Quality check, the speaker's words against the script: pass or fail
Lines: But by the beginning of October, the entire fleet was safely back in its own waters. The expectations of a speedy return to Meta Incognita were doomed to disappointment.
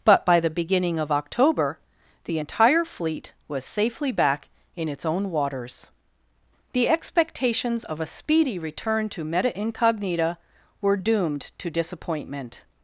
pass